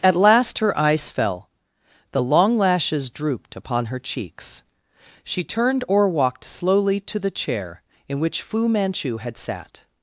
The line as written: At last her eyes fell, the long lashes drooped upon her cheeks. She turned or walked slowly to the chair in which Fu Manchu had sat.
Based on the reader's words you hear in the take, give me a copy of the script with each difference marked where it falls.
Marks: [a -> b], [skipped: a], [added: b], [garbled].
At last her eyes fell, the long lashes drooped upon her cheeks. She turned or walked slowly to the chair in which Fu Manchu had sat.